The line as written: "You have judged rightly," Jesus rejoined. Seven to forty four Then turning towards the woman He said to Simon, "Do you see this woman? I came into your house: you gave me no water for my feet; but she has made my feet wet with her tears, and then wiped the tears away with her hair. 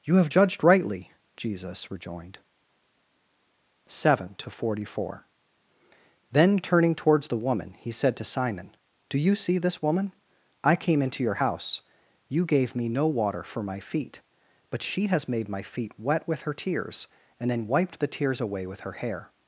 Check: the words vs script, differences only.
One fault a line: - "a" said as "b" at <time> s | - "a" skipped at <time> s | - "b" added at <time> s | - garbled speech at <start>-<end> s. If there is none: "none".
none